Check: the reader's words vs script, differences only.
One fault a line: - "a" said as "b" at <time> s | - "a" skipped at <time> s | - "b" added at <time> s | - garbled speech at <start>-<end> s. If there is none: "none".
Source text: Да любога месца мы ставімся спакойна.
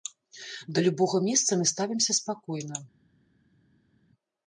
none